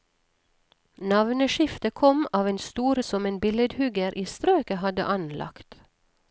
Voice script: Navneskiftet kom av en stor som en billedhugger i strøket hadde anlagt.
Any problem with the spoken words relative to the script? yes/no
no